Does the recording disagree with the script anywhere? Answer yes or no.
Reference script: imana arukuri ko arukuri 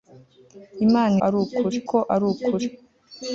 no